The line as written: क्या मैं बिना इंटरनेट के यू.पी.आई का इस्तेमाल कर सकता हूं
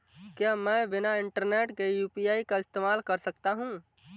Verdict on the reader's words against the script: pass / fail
pass